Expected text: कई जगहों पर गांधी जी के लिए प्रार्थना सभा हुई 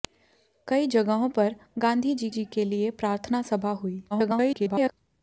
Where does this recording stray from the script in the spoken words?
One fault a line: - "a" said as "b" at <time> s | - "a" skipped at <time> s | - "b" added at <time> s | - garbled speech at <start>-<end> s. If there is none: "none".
- "जी" added at 2.3 s
- garbled speech at 4.1-4.9 s